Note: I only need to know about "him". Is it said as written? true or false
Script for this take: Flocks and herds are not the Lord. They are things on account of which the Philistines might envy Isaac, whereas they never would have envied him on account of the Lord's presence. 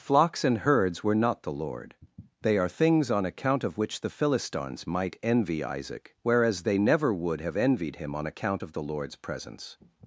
true